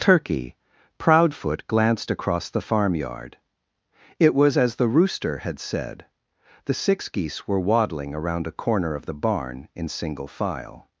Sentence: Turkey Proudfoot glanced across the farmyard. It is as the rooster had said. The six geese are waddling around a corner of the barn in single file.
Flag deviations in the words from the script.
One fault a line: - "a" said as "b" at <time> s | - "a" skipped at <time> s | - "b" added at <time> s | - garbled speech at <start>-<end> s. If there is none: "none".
- "is" said as "was" at 4.3 s
- "are" said as "were" at 7.5 s